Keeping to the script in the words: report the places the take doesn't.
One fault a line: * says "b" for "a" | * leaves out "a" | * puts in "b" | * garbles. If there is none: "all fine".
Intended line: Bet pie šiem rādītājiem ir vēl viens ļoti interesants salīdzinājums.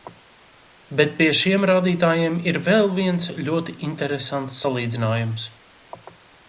all fine